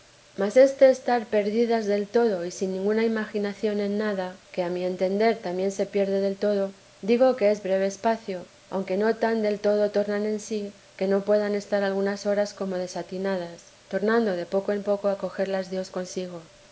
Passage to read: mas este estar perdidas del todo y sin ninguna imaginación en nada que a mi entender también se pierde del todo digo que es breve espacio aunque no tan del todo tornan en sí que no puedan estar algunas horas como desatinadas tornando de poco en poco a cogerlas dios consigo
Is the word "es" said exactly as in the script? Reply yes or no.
yes